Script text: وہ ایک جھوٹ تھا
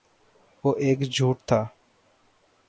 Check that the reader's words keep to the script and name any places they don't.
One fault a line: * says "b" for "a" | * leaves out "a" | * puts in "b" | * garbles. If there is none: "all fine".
all fine